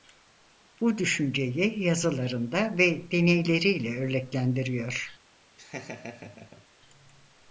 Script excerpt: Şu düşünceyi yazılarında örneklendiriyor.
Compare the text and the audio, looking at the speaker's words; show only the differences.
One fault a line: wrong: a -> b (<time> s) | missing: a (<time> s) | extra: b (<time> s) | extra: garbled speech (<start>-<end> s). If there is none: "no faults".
wrong: Şu -> Bu (0.8 s)
extra: ve deneyleriyle (2.8 s)